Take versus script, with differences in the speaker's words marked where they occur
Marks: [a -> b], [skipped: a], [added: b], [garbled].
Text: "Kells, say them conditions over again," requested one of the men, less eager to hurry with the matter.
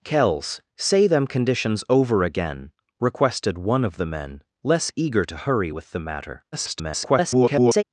"Kells, say them conditions over again," requested one of the men, less eager to hurry with the matter. [garbled]